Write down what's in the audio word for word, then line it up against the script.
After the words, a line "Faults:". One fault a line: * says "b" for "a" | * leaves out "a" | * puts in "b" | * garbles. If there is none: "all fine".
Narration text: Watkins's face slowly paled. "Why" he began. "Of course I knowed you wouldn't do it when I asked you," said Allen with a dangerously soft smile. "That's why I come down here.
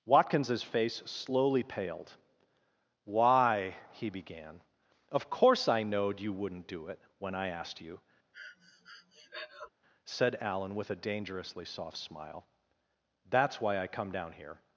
Watkins's face slowly paled. "Why" he began. "Of course I knowed you wouldn't do it when I asked you," said Allen with a dangerously soft smile. "That's why I come down here.
Faults:
all fine